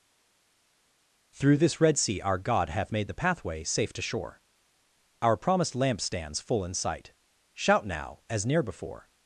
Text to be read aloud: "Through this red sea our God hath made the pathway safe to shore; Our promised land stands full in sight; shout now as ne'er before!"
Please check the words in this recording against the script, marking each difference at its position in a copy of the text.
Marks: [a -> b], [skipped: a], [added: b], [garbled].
"Through this red sea our God hath made the pathway safe to shore; Our promised [land -> lamp] stands full in sight; shout now as ne'er before!"